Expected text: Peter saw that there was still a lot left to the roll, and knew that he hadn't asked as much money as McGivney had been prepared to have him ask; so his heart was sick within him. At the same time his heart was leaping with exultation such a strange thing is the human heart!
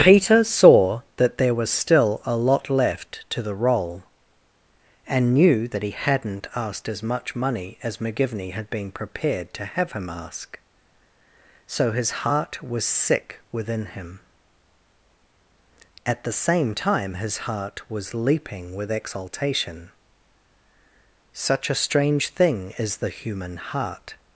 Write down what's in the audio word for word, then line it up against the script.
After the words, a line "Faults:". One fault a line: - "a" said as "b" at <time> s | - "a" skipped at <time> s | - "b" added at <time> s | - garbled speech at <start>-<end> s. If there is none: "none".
Peter saw that there was still a lot left to the roll, and knew that he hadn't asked as much money as McGivney had been prepared to have him ask; so his heart was sick within him. At the same time his heart was leaping with exultation such a strange thing is the human heart!
Faults:
none